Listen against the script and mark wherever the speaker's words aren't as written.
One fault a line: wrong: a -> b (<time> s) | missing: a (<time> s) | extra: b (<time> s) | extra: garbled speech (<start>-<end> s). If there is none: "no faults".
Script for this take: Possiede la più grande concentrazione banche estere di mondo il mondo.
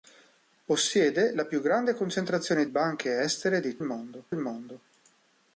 no faults